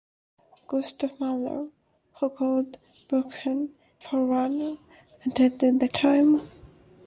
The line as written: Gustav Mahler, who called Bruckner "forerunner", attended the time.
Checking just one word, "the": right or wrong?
right